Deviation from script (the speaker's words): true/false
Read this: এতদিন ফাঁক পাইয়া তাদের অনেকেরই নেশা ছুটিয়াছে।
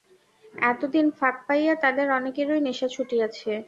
false